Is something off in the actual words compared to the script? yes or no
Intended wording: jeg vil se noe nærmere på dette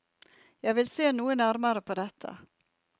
no